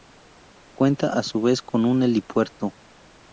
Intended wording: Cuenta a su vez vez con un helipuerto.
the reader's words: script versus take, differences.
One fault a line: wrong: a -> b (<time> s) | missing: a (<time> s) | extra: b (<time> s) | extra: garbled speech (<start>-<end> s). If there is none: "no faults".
missing: vez (1.6 s)